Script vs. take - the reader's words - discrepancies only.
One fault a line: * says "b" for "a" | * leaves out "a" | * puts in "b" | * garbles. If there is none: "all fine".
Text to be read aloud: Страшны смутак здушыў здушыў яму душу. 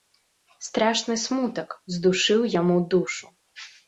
* leaves out "здушыў"